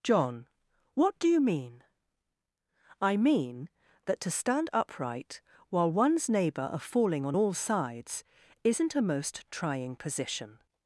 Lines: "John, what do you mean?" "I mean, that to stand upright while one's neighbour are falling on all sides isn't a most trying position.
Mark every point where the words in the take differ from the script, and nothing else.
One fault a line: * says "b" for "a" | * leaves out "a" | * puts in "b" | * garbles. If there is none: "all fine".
all fine